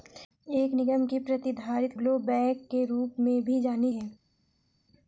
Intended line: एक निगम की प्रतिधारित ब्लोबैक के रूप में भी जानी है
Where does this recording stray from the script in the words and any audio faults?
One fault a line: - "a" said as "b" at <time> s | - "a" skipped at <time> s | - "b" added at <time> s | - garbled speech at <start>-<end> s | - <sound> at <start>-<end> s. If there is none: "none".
none